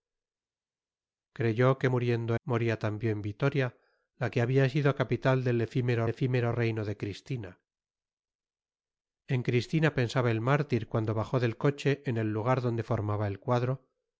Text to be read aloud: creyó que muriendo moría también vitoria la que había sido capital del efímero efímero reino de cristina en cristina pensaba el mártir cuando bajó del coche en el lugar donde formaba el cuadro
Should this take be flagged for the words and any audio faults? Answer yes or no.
no